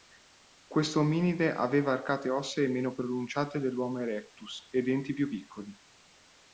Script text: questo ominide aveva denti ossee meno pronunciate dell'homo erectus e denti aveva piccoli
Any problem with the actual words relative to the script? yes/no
yes